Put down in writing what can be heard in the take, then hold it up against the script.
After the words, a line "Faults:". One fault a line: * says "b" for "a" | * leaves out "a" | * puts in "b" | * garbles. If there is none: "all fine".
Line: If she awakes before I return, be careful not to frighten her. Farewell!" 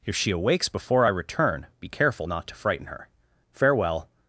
If she awakes before I return, be careful not to frighten her. Farewell!"
Faults:
all fine